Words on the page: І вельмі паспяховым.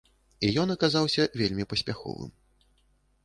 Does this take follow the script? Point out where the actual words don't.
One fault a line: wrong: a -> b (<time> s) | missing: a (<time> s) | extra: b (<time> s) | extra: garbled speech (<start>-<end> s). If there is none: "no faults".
extra: ён аказаўся (0.6 s)